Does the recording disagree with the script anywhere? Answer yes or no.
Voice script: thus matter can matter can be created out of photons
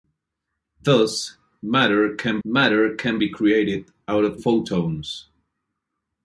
no